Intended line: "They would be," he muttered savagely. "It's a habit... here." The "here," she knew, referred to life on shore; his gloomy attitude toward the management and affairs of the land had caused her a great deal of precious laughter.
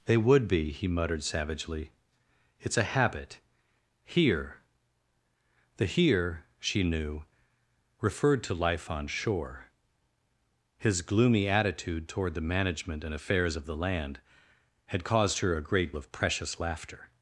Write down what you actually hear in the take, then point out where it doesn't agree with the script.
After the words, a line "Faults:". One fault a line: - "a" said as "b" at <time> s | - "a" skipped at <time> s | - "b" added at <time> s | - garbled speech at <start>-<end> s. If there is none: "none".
"They would be," he muttered savagely. "It's a habit... here." The "here," she knew, referred to life on shore; his gloomy attitude toward the management and affairs of the land had caused her a great of precious laughter.
Faults:
- "deal" skipped at 15.9 s